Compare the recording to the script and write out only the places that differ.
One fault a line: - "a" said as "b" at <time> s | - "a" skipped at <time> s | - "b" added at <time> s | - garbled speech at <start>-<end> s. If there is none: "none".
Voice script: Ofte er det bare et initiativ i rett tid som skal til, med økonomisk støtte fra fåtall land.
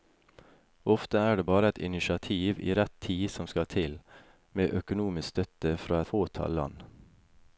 none